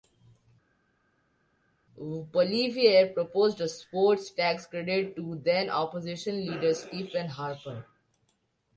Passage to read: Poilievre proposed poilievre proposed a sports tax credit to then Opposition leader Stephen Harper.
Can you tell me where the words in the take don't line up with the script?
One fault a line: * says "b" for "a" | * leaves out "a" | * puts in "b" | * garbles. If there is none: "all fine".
* leaves out "poilievre proposed"